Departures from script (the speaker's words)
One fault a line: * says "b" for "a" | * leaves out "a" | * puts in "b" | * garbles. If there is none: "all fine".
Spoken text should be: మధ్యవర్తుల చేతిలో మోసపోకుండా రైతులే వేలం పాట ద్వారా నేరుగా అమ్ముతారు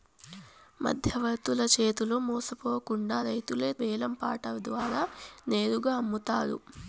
all fine